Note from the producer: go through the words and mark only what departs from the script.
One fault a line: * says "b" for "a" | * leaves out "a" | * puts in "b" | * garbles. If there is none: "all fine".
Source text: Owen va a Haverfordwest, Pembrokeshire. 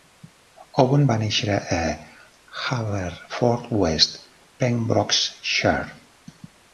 * puts in "néixer"